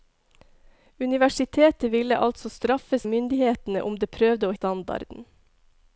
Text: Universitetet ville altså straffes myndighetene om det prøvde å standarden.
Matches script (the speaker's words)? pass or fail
pass